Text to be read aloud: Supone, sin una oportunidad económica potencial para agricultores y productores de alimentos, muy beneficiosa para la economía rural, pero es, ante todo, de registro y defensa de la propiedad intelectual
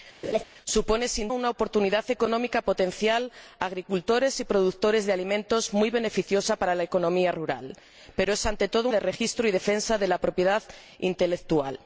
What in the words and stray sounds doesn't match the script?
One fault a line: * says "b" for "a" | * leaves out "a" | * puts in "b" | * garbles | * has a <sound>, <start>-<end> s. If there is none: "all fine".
* has a laugh, 0.2-0.4 s